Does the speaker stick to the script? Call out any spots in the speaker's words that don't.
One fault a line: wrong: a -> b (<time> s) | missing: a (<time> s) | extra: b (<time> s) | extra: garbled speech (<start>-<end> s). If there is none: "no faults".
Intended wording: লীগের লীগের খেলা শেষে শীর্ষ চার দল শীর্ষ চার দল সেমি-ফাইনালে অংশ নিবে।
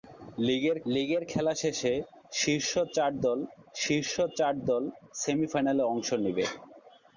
no faults